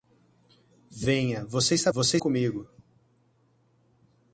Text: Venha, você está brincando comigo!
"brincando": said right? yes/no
no